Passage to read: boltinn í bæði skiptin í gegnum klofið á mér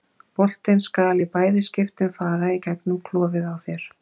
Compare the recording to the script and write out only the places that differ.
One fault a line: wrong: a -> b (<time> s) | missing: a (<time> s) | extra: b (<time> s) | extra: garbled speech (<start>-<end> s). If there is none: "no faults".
extra: skal (0.8 s)
extra: fara (2.2 s)
wrong: mér -> þér (3.7 s)